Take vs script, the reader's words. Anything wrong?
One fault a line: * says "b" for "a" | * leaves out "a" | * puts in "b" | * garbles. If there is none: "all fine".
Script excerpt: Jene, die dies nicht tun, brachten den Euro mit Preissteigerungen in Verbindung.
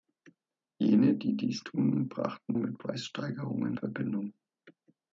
* leaves out "nicht"
* leaves out "den Euro"
* leaves out "in"